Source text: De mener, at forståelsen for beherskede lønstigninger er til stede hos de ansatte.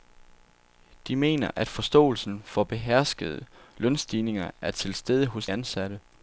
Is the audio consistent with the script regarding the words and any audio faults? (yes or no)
no